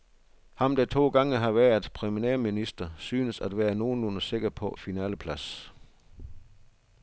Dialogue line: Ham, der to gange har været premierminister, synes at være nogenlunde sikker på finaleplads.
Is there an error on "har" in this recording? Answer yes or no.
no